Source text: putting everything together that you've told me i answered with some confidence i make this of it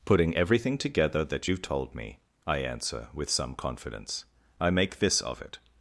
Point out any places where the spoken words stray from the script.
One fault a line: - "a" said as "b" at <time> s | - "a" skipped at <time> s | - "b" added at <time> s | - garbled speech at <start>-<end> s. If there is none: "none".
- "answered" said as "answer" at 2.6 s